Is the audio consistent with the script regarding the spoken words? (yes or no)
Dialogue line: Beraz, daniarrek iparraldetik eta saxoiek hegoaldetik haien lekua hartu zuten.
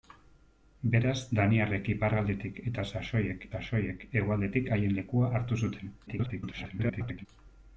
no